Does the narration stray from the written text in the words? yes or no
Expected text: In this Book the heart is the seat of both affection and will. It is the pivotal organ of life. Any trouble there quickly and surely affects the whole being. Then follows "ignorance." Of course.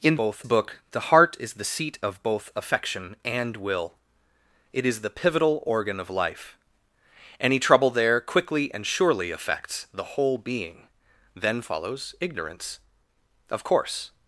yes